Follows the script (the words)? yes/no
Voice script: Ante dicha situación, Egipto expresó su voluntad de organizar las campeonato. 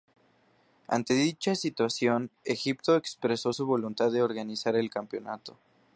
no